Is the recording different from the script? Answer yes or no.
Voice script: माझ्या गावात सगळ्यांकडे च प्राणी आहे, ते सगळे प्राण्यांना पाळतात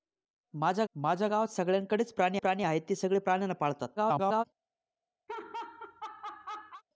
yes